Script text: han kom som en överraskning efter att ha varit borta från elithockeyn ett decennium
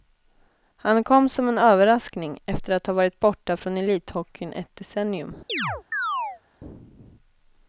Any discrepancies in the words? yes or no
no